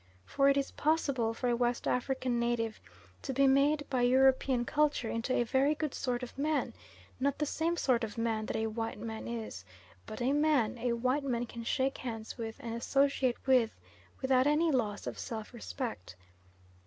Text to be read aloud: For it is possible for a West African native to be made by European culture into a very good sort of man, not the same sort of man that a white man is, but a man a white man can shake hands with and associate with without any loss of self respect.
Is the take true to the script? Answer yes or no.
yes